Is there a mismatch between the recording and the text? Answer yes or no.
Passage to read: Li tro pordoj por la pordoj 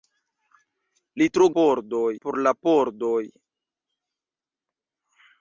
no